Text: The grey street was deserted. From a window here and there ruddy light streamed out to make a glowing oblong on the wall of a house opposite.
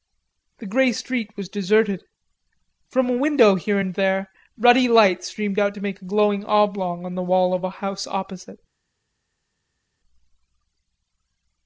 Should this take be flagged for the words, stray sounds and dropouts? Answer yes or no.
no